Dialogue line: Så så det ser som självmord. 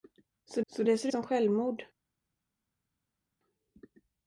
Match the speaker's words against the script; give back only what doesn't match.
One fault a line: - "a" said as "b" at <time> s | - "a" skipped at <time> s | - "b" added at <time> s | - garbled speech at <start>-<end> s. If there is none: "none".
none